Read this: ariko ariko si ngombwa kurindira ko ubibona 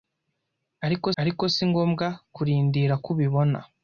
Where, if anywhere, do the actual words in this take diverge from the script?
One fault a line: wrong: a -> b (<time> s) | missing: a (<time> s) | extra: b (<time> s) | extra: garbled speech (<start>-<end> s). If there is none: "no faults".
no faults